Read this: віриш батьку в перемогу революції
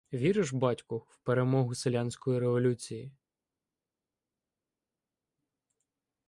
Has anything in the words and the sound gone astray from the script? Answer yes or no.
yes